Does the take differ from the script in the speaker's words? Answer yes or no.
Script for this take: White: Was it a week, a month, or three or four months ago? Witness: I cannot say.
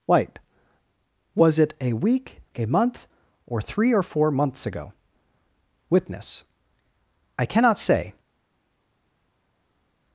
no